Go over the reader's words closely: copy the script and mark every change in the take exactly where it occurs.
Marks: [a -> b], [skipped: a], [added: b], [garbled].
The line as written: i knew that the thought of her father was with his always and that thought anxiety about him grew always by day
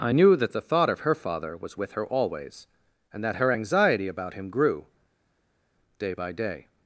i knew that the thought of her father was with [his -> her] always and that [thought -> her] anxiety about him grew [always -> day] by day